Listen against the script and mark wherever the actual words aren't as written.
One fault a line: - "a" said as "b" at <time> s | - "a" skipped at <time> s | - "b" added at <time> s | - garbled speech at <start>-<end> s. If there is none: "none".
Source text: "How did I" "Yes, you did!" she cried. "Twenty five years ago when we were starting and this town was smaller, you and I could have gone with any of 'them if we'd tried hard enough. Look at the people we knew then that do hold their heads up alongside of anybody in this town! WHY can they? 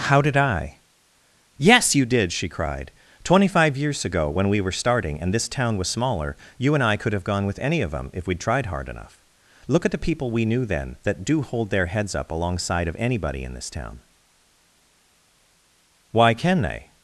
none